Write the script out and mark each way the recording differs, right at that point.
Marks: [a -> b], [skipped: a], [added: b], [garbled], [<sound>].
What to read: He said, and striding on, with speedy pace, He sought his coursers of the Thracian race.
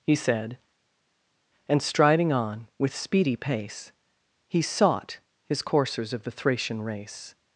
He said, and striding on, with speedy pace, He sought his coursers of the Thracian race.